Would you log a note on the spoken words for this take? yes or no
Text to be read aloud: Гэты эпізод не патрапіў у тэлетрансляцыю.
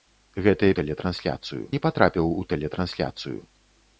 yes